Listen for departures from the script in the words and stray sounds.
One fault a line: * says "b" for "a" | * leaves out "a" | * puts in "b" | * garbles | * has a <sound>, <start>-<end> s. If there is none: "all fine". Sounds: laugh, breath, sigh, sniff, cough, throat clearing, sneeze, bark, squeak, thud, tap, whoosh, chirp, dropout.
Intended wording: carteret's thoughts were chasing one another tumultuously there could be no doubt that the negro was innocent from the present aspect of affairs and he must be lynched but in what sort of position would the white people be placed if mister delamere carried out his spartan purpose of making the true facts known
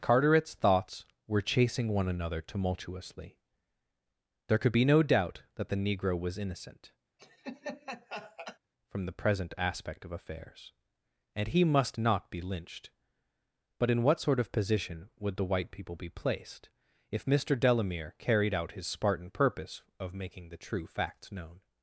* has a laugh, 7.2-8.6 s
* puts in "not"